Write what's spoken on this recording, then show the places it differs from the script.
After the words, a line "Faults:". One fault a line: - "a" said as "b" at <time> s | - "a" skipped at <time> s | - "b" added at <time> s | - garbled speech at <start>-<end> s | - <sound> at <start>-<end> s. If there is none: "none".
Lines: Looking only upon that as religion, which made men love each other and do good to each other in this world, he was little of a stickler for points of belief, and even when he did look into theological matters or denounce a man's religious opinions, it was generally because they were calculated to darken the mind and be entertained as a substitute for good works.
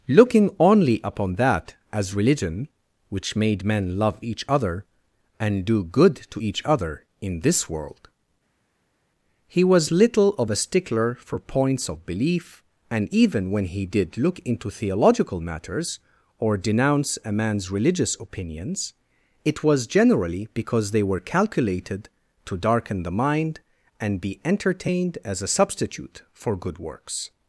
Looking only upon that as religion, which made men love each other and do good to each other in this world, he was little of a stickler for points of belief, and even when he did look into theological matters or denounce a man's religious opinions, it was generally because they were calculated to darken the mind and be entertained as a substitute for good works.
Faults:
none